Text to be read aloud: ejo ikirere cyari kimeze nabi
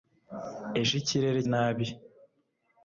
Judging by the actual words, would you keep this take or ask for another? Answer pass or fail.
fail